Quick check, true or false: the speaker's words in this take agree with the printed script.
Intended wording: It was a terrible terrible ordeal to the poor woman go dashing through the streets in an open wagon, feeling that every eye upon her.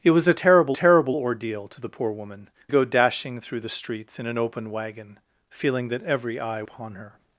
true